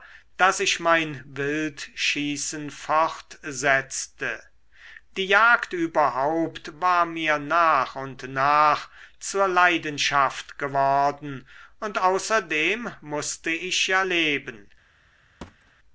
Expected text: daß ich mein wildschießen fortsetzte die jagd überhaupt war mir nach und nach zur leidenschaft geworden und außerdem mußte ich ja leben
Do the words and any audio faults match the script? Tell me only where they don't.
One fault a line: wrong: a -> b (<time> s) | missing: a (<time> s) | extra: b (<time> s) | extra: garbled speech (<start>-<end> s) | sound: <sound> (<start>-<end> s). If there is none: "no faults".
sound: thud (15.4-15.7 s)